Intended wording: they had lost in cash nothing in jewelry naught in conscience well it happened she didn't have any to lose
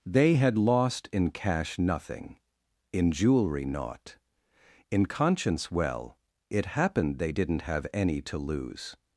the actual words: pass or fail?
fail